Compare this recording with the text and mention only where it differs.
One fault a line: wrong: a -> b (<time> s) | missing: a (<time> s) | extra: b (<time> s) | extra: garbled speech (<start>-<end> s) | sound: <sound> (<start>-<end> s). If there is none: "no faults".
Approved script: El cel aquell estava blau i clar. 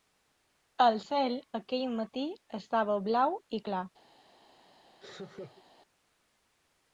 extra: matí (1.9 s)
sound: laugh (5.0-5.6 s)